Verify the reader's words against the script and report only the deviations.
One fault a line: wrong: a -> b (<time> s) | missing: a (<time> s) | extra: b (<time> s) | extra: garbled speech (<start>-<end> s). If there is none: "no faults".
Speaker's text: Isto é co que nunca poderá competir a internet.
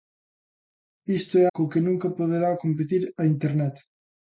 no faults